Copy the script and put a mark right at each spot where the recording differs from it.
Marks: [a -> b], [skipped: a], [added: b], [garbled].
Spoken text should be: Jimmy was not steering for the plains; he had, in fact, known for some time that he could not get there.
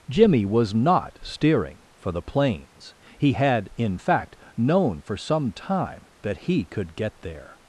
Jimmy was not steering for the plains; he had, in fact, known for some time that he could [skipped: not] get there.